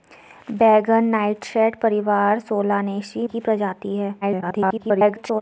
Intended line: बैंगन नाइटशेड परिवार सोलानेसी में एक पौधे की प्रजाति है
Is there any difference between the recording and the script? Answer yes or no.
yes